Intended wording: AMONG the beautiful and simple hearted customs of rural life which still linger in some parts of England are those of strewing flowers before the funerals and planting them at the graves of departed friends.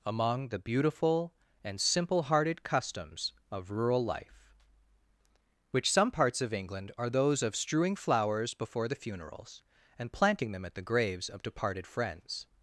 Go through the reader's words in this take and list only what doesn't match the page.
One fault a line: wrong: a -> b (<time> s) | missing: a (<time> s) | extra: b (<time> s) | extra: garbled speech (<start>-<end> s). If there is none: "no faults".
missing: still linger in (5.9 s)